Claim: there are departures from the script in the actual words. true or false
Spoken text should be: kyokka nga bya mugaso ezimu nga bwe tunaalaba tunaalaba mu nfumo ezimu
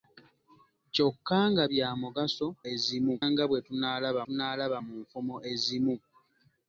false